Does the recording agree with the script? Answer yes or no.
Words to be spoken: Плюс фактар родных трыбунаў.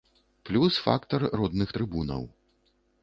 yes